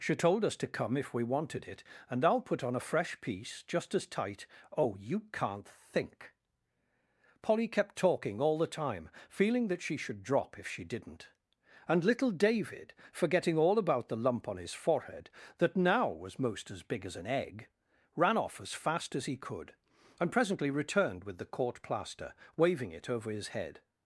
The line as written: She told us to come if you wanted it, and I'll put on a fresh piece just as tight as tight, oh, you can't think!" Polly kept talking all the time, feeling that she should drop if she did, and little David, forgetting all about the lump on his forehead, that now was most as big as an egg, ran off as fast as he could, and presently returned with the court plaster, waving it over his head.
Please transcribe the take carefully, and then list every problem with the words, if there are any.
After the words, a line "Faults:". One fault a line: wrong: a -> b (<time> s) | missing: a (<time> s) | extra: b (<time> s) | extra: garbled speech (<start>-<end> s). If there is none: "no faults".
She told us to come if we wanted it, and I'll put on a fresh piece just as tight, oh, you can't think!" Polly kept talking all the time, feeling that she should drop if she didn't, and little David, forgetting all about the lump on his forehead, that now was most as big as an egg, ran off as fast as he could, and presently returned with the court plaster, waving it over his head.
Faults:
wrong: you -> we (1.1 s)
missing: as tight (4.5 s)
wrong: did -> didn't (10.8 s)